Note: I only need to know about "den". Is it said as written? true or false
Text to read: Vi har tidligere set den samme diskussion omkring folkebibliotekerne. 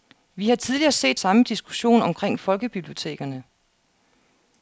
false